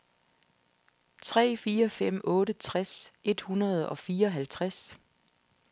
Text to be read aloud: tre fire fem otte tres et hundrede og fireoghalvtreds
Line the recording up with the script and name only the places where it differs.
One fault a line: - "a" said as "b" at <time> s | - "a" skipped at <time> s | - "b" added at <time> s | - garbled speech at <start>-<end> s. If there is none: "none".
none